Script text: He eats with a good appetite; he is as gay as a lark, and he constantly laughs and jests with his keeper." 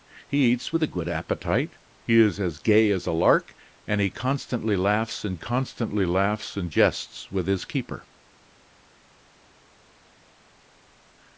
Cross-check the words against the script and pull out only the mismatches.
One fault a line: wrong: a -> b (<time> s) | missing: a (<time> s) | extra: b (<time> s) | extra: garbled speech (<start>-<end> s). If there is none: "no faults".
extra: constantly laughs and (5.3 s)